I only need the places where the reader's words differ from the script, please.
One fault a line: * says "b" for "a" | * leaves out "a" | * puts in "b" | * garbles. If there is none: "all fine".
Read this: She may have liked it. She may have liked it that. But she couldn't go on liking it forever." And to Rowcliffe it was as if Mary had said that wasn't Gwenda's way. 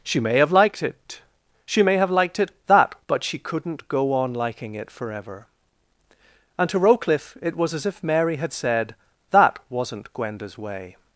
all fine